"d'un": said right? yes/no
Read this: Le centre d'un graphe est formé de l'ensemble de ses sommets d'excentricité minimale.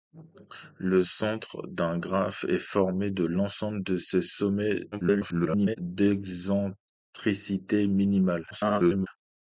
yes